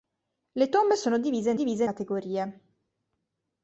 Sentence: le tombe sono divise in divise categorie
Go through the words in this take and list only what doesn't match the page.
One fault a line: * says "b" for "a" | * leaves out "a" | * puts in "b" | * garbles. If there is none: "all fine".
all fine